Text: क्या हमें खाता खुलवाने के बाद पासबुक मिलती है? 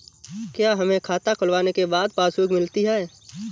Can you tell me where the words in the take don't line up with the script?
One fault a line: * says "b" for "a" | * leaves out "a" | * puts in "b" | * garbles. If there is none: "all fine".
all fine